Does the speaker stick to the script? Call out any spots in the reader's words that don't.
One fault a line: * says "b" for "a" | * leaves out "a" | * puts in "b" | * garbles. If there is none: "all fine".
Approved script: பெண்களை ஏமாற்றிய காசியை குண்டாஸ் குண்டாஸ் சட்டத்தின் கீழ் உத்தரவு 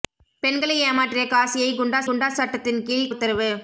all fine